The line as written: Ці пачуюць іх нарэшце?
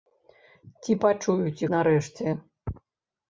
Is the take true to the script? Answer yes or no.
no